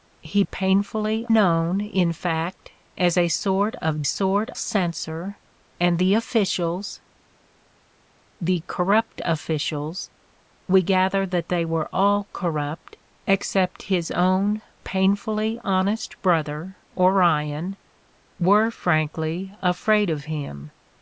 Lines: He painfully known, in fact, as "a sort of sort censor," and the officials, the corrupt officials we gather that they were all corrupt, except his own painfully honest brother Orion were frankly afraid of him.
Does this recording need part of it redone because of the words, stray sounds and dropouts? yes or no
no